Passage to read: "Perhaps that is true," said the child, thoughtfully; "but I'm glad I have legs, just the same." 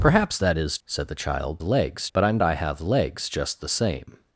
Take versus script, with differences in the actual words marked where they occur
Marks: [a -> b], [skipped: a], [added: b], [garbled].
"Perhaps that is [skipped: true,"] said the child, [thoughtfully; -> legs] "but I'm [skipped: glad] I have legs, just the same."